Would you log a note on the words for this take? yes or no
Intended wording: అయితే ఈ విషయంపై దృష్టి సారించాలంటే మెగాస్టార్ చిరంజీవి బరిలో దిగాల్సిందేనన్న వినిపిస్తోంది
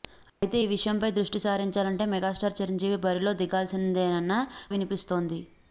no